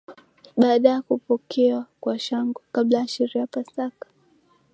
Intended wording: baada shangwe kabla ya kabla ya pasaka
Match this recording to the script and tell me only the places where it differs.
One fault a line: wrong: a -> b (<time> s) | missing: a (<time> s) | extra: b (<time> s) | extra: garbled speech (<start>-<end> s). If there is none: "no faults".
extra: ya kupokewa kwa (0.9 s)
wrong: kabla -> sherehe (3.1 s)